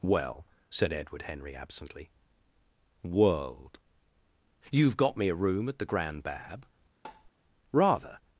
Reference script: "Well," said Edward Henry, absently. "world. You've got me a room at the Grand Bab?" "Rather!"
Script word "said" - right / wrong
right